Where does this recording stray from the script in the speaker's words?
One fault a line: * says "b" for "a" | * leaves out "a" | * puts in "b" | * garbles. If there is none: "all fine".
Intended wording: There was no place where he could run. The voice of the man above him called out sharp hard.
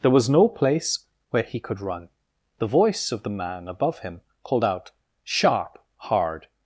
all fine